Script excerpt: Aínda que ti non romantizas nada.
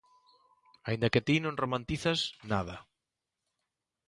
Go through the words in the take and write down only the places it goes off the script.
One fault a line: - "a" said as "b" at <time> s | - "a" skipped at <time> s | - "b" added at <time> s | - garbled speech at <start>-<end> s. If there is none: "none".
none